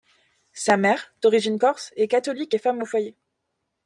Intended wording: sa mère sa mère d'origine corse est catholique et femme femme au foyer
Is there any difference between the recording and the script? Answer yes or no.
yes